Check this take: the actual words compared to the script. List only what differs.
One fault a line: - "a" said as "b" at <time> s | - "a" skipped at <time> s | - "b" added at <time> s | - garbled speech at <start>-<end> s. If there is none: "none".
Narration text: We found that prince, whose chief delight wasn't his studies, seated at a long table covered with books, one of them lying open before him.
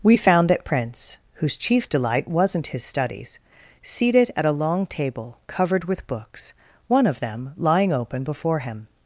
none